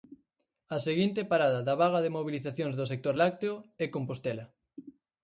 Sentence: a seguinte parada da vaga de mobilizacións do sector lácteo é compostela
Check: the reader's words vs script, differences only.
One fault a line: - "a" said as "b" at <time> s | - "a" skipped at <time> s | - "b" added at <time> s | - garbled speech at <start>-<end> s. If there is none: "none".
none